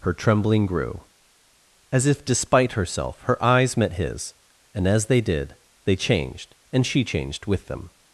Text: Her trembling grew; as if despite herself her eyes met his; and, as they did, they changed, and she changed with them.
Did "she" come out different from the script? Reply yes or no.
no